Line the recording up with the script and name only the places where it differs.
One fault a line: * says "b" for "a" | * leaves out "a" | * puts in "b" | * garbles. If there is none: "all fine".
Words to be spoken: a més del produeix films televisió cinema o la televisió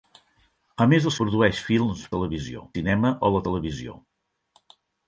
all fine